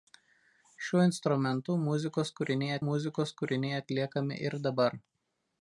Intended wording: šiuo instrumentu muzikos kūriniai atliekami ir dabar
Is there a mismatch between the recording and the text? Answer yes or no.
yes